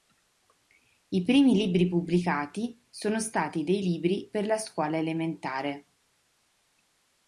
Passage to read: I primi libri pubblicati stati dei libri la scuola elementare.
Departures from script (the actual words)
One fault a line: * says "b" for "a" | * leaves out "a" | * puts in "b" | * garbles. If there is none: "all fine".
* puts in "sono"
* puts in "per"